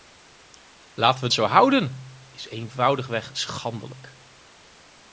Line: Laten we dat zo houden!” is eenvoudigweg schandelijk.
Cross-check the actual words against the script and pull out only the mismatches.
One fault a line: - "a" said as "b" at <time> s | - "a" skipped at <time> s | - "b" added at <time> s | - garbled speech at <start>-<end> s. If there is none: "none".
- "dat" skipped at 1.3 s